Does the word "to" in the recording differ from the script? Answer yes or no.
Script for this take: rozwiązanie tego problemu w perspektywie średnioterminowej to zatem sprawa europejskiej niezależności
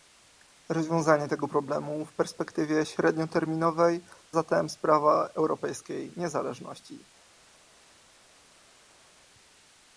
yes